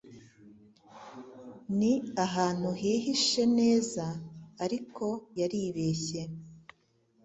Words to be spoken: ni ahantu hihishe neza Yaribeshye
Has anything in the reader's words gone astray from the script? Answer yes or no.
yes